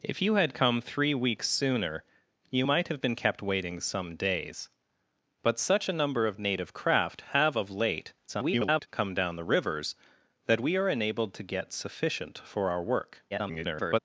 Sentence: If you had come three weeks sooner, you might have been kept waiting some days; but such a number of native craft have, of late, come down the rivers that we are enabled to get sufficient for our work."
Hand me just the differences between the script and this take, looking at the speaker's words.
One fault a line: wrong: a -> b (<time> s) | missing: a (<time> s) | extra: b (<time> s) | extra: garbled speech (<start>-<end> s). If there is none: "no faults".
extra: garbled speech (8.3-8.9 s)
extra: garbled speech (13.3-14.0 s)